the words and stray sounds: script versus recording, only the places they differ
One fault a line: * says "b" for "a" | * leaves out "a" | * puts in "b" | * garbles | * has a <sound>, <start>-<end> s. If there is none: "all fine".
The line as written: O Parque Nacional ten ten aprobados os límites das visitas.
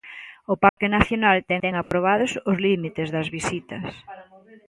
* has a dropout, 0.7-0.8 s
* has a dropout, 1.8-1.9 s